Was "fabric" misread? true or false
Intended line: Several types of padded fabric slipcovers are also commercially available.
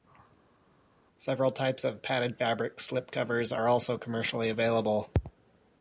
false